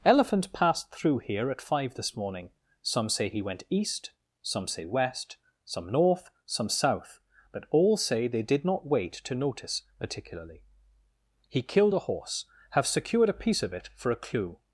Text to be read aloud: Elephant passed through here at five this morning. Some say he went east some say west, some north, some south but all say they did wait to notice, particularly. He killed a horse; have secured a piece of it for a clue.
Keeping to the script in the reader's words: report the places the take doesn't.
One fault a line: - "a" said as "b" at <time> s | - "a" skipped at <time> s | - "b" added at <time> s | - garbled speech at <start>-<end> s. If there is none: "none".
- "not" added at 8.6 s